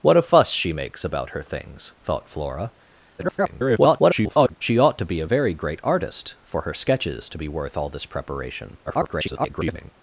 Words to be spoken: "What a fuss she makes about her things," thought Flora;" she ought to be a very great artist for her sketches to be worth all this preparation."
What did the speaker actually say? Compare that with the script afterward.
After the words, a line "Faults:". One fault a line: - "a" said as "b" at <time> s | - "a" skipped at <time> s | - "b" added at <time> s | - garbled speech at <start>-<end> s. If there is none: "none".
"What a fuss she makes about her things," thought Flora;" [garbled] she ought to be a very great artist for her sketches to be worth all this preparation." [garbled]
Faults:
- garbled speech at 3.2-4.6 s
- garbled speech at 8.9-9.9 s